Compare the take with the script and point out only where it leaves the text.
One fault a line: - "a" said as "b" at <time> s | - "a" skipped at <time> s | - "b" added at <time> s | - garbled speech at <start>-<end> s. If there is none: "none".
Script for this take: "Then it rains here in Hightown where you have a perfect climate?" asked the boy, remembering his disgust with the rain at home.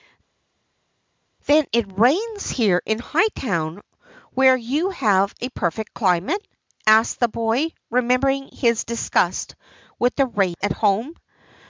none